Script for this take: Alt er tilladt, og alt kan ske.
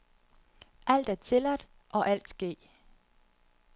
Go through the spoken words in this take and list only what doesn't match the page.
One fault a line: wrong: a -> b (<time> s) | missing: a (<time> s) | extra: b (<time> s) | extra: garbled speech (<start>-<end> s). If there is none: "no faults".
missing: kan (2.3 s)